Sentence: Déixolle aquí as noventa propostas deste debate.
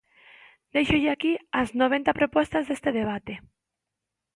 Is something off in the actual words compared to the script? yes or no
no